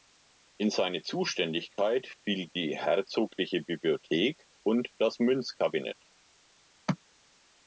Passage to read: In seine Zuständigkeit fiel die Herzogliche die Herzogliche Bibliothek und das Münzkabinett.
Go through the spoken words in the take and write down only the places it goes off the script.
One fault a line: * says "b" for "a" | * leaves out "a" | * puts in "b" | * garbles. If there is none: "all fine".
* leaves out "die Herzogliche"